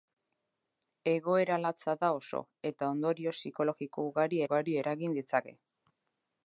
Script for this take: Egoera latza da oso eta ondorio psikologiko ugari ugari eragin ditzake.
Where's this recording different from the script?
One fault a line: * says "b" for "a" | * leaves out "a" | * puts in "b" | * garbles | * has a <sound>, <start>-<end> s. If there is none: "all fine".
all fine